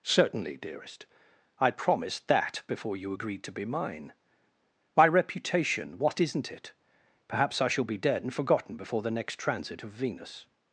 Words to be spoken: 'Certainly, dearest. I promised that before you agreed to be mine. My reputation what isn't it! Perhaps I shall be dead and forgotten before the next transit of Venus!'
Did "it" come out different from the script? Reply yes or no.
no